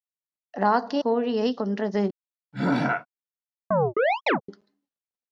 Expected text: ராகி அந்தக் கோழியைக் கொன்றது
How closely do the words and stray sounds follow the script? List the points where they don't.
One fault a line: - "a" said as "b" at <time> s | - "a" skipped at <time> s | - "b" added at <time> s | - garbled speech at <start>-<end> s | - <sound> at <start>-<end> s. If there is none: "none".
- "அந்தக்" skipped at 1.0 s
- throat clearing at 2.5-3.1 s
- chirp at 3.7-4.4 s